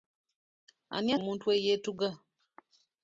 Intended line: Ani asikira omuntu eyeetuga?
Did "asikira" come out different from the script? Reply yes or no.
yes